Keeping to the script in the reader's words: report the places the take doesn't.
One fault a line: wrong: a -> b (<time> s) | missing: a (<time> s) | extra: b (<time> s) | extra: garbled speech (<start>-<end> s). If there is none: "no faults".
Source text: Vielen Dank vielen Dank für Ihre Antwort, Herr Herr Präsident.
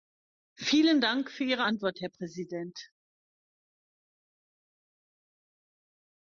missing: vielen Dank (1.3 s)
missing: Herr (2.1 s)